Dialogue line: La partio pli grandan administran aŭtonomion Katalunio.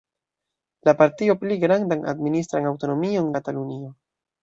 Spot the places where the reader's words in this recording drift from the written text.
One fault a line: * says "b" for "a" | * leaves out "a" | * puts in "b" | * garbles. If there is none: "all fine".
all fine